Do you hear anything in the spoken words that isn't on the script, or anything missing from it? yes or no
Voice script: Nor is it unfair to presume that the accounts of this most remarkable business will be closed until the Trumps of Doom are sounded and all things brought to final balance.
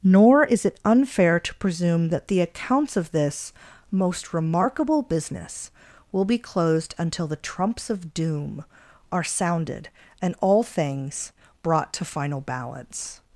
no